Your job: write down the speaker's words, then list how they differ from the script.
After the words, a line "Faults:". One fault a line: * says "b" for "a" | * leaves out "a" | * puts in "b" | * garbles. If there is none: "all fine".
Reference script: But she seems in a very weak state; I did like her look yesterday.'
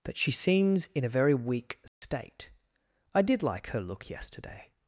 But she seems in a very weak state; I did like her look yesterday.'
Faults:
all fine